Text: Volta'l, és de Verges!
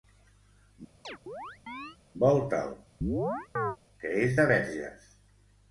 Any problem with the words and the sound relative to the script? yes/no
yes